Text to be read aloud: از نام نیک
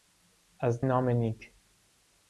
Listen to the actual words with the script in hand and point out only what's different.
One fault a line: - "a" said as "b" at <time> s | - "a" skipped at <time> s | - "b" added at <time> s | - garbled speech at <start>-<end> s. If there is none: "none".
none